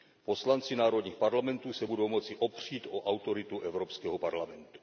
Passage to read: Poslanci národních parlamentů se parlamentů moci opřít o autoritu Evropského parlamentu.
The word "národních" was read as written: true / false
true